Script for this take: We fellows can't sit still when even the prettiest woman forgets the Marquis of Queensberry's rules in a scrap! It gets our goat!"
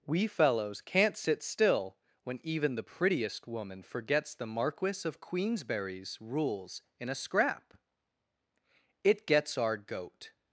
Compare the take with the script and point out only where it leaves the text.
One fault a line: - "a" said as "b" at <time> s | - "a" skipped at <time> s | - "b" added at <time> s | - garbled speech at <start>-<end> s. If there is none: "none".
none